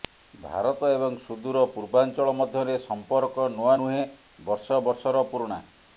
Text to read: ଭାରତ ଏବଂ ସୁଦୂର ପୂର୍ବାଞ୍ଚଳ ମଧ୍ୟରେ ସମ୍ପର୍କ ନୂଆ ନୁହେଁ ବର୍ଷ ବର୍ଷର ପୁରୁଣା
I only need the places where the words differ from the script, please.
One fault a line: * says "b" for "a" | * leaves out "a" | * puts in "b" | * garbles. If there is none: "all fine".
all fine